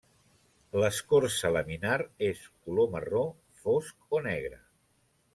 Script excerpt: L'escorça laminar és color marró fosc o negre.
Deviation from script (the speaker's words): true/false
false